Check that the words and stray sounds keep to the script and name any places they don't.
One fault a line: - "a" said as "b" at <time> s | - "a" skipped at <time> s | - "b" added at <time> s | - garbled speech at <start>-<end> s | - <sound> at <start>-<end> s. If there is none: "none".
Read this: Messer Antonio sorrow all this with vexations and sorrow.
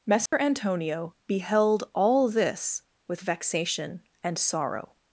- dropout at 0.3-0.3 s
- "sorrow" said as "beheld" at 1.3 s
- "vexations" said as "vexation" at 3.2 s